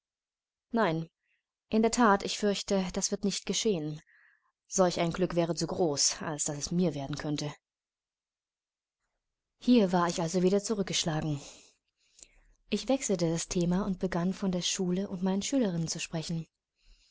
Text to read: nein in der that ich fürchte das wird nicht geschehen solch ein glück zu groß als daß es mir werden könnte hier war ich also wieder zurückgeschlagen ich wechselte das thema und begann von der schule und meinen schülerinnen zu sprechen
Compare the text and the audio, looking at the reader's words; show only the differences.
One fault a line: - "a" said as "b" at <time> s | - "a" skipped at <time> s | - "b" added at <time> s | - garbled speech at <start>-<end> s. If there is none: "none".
- "wäre" added at 5.3 s